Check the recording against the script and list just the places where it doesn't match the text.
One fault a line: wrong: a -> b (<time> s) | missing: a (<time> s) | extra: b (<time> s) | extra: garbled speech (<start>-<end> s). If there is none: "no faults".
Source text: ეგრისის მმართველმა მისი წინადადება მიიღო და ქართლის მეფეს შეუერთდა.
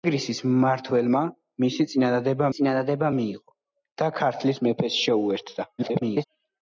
extra: წინადადება (2.6 s)
extra: garbled speech (5.8-6.3 s)